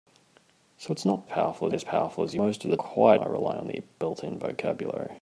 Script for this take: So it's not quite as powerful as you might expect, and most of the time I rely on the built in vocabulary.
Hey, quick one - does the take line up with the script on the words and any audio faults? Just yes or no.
no